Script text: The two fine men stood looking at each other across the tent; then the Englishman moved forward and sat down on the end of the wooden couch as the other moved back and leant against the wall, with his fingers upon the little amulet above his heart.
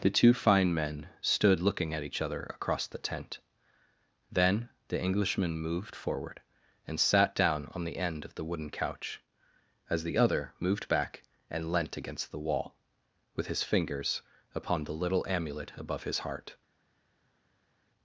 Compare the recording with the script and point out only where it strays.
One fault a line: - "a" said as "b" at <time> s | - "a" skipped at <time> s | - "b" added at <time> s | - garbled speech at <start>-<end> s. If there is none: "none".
none